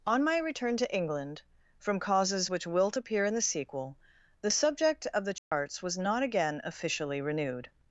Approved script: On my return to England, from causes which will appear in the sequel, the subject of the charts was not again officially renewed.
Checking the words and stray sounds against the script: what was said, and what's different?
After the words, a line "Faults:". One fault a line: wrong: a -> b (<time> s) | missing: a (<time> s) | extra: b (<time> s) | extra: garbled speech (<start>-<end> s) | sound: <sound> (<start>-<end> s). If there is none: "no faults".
On my return to England, from causes which wilt appear in the sequel, the subject of the charts was not again officially renewed.
Faults:
wrong: will -> wilt (2.6 s)
sound: dropout (5.4-5.5 s)